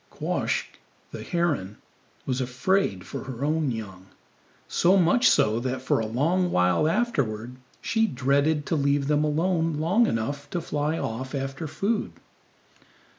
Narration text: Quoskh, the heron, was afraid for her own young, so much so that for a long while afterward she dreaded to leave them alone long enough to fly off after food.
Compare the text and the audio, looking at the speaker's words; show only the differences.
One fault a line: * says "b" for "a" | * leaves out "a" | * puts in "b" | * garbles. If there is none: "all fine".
all fine